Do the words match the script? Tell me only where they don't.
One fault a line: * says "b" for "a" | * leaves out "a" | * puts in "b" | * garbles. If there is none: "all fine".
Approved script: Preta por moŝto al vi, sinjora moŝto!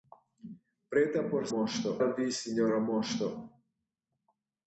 all fine